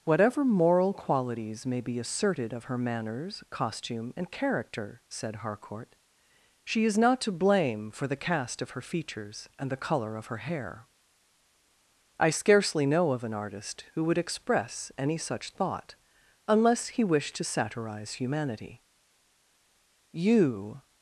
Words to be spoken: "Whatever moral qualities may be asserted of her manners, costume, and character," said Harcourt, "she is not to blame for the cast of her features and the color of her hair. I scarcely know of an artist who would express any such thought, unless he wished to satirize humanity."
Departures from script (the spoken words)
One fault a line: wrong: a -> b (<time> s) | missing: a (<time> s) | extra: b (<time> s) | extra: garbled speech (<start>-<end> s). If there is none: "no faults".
extra: You (20.1 s)